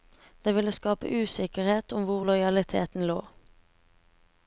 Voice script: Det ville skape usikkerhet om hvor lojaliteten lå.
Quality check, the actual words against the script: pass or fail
pass